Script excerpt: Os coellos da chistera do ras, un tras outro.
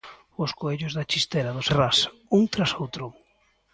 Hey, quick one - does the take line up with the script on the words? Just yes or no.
yes